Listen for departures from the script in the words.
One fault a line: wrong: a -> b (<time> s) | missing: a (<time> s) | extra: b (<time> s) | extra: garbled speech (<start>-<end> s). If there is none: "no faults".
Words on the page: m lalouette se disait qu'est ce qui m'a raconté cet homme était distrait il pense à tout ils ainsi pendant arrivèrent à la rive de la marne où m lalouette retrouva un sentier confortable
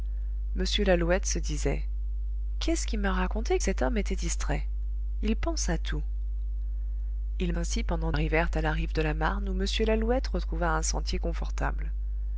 no faults